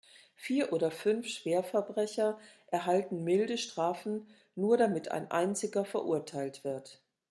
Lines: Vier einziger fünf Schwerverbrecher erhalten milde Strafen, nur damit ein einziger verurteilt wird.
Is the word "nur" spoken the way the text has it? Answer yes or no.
yes